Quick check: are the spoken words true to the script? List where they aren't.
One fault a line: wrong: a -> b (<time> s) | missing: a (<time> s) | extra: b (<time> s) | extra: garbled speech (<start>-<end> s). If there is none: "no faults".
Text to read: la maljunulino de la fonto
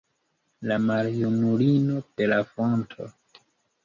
no faults